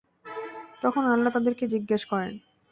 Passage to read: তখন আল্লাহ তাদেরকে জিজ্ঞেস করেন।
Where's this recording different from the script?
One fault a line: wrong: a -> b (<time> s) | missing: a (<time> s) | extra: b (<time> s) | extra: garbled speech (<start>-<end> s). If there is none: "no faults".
no faults